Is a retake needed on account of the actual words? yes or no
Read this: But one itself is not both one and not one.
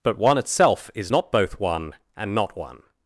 no